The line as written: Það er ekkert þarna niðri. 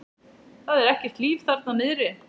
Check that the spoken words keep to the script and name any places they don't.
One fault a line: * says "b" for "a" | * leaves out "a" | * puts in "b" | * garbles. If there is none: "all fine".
* puts in "líf"